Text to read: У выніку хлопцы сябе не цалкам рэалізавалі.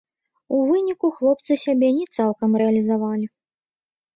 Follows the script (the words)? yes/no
yes